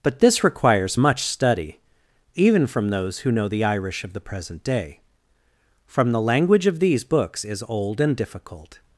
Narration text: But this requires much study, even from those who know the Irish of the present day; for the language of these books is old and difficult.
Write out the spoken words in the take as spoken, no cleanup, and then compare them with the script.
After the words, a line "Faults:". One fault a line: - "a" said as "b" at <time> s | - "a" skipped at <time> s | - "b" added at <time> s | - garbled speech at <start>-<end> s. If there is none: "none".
But this requires much study, even from those who know the Irish of the present day; from the language of these books is old and difficult.
Faults:
- "for" said as "from" at 5.9 s